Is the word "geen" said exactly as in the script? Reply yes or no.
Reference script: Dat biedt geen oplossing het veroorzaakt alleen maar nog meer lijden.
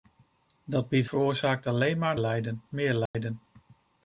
no